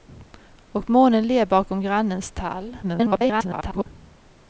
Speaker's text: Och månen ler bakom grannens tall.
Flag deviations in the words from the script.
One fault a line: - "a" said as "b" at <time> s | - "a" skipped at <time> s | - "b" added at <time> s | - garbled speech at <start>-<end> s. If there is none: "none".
- garbled speech at 2.8-3.9 s